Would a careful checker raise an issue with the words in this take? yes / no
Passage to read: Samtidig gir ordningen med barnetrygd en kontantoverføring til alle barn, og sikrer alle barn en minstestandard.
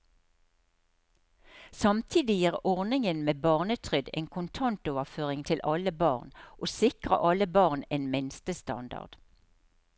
no